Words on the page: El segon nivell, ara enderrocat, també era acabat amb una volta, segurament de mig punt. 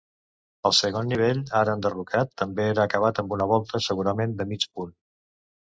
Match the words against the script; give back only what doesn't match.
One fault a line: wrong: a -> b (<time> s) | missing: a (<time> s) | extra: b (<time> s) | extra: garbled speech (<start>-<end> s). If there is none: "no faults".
no faults